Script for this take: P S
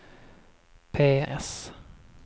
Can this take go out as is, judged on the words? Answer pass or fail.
pass